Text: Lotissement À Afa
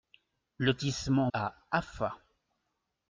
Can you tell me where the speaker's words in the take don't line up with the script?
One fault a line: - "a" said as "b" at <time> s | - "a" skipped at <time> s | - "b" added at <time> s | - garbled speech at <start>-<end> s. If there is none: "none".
none